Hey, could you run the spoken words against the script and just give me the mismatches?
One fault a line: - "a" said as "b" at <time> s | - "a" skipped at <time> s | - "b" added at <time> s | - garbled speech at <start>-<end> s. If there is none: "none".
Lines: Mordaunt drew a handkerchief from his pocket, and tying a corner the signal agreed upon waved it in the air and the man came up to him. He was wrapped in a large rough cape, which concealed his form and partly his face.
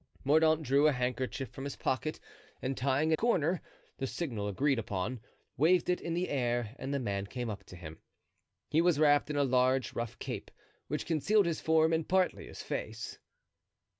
none